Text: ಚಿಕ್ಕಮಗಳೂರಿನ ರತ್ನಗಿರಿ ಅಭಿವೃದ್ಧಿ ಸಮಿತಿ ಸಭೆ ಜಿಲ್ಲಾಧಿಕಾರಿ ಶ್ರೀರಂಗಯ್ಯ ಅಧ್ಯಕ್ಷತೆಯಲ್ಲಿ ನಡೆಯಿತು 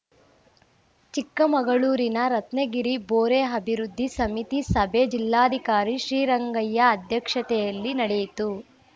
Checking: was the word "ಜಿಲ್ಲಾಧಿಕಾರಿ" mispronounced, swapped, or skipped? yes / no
no